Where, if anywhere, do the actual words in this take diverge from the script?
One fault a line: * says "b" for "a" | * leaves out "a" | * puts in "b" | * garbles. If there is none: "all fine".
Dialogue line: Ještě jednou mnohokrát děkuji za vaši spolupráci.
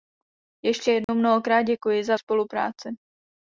* leaves out "vaši"